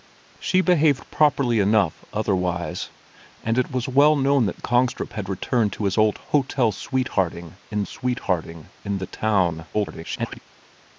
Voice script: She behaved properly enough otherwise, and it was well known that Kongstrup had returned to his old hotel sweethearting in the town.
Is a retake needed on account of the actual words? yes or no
yes